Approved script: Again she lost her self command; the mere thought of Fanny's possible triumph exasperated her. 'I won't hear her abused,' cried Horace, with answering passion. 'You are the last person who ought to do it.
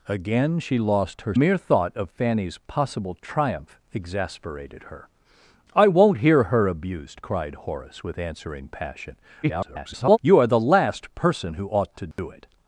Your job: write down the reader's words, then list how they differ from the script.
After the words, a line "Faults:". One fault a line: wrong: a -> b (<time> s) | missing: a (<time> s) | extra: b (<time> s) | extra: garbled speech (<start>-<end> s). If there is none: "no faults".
Again she lost her mere thought of Fanny's possible triumph exasperated her. 'I won't hear her abused,' cried Horace, with answering passion. [garbled] 'You are the last person who ought to do it.
Faults:
missing: self command the (1.4 s)
extra: garbled speech (9.4-10.2 s)